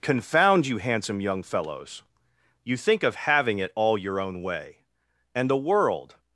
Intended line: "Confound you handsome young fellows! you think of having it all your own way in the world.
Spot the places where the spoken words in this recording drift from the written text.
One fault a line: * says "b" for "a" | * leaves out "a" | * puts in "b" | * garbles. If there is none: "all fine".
* says "and" for "in"